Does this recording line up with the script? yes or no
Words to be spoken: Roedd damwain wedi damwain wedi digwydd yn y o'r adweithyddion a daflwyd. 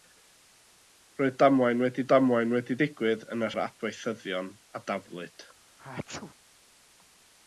yes